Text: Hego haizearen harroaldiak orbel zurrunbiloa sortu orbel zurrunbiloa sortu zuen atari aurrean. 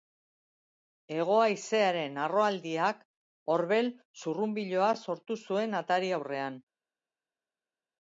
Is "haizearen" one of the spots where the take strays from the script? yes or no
no